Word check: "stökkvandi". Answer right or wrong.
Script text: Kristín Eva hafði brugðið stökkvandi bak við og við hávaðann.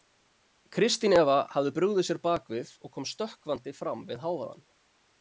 wrong